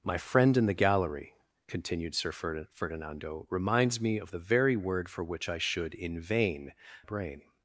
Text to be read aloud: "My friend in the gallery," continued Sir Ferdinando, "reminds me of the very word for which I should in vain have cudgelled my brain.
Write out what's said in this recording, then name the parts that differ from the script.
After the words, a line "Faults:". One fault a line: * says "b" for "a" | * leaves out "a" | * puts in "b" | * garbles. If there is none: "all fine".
"My friend in the gallery," continued Sir Ferdinando, "reminds me of the very word for which I should in vain brain.
Faults:
* leaves out "have cudgelled my"